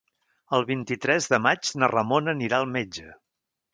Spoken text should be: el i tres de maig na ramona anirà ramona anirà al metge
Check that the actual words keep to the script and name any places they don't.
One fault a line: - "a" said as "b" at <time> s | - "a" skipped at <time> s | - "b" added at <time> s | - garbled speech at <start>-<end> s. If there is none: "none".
- "vint" added at 0.7 s
- "ramona anirà" skipped at 2.6 s